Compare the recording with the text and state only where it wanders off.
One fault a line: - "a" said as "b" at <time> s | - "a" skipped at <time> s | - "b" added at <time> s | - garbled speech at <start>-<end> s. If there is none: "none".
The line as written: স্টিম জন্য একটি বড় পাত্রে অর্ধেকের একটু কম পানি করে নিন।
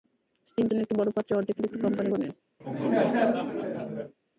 none